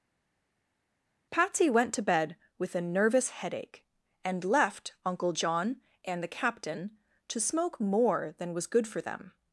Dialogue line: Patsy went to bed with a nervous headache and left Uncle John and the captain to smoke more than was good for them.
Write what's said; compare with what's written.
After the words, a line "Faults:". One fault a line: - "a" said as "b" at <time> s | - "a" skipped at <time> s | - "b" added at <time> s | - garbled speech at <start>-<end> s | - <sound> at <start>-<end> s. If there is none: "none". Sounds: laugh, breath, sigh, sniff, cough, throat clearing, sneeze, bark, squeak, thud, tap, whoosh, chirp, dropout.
Patsy went to bed with a nervous headache and left Uncle John and the captain to smoke more than was good for them.
Faults:
none